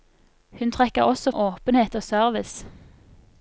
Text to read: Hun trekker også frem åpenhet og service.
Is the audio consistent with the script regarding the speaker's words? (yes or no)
no